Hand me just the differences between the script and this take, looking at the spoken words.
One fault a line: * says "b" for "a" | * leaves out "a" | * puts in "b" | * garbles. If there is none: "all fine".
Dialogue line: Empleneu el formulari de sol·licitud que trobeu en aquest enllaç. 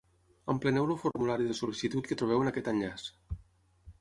all fine